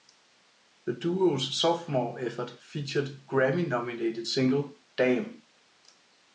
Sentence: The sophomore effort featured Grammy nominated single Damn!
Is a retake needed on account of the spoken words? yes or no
yes